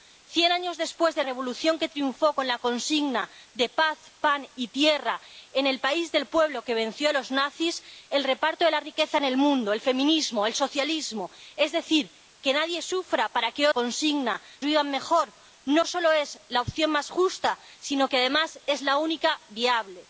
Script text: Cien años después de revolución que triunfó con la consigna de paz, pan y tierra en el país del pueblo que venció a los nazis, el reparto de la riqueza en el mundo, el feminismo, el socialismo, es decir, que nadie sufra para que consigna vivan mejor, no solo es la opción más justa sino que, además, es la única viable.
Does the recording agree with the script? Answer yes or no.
yes